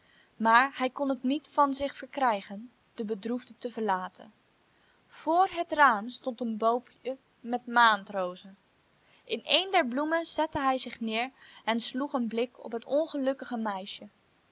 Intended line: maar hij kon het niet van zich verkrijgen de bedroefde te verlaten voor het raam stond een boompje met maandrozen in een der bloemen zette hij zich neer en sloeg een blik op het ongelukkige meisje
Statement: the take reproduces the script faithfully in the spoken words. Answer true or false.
true